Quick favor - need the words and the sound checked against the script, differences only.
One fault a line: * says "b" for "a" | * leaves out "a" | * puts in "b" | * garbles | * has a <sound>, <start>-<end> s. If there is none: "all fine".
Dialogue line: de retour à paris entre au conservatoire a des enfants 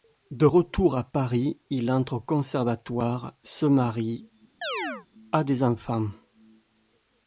* puts in "il"
* puts in "se marie"
* has a chirp, 4.6-5.1 s